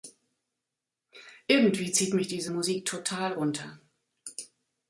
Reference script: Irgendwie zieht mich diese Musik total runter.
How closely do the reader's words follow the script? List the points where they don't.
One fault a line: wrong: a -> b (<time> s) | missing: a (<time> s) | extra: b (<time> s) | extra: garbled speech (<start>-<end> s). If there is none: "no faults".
no faults